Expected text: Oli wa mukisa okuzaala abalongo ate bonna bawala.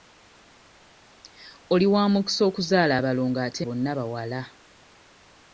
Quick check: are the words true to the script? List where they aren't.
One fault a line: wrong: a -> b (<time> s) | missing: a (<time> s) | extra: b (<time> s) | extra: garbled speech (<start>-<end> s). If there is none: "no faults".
no faults